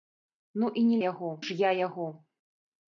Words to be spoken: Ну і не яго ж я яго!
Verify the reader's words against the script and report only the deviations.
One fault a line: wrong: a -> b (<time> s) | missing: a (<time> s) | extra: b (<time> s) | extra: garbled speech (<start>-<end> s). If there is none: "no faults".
no faults